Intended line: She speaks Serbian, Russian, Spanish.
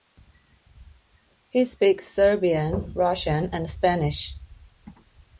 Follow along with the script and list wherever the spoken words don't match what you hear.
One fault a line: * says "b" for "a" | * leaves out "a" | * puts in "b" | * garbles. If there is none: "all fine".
* says "He" for "She"
* puts in "and"